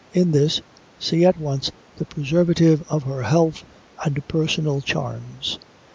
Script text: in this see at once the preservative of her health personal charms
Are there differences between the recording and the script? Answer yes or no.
yes